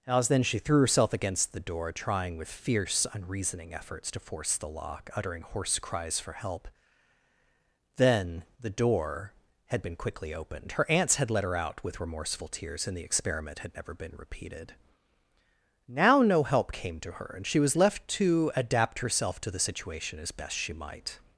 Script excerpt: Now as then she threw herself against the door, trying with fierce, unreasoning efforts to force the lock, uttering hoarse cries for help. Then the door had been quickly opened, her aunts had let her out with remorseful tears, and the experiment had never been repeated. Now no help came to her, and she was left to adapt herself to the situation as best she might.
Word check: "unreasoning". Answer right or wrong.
right